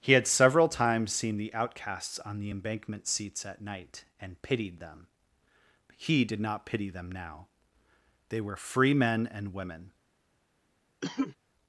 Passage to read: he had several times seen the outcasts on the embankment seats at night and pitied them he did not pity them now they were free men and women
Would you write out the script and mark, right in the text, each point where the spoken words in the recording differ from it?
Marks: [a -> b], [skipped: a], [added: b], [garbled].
he had several times seen the outcasts on the embankment seats at night and pitied them he did not pity them now they were free men and women